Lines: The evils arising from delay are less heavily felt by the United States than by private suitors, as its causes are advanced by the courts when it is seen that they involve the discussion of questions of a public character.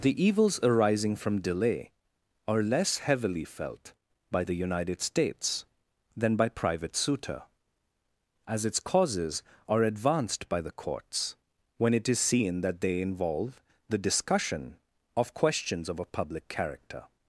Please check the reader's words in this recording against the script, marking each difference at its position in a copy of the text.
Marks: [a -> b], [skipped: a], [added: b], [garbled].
The evils arising from delay are less heavily felt by the United States than by private [suitors, -> suitor] as its causes are advanced by the courts when it is seen that they involve the discussion of questions of a public character.